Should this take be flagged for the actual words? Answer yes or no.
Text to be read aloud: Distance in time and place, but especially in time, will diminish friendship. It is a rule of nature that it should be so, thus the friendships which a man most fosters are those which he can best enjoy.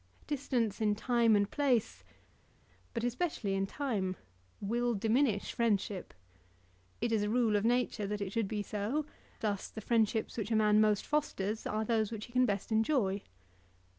no